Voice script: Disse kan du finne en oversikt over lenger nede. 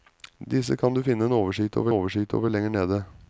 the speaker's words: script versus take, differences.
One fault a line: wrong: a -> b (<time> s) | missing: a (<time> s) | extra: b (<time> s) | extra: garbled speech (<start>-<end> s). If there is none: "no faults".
extra: oversikt over (1.9 s)